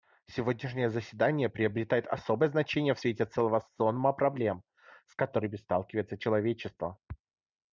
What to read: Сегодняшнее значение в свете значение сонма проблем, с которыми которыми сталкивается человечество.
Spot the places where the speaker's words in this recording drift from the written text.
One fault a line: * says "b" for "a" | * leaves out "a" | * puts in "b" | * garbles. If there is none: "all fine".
* puts in "заседание приобретает особое"
* says "целого" for "значение"
* leaves out "которыми"